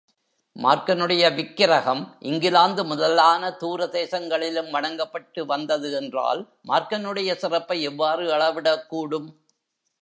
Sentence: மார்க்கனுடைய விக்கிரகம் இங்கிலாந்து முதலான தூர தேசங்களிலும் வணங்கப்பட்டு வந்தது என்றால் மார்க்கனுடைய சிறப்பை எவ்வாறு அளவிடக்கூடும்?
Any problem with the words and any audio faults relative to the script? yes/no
no